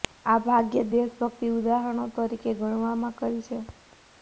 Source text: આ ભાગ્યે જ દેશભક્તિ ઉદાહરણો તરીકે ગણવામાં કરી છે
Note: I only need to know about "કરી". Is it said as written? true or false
true